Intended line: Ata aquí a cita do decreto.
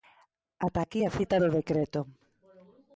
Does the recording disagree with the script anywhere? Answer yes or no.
no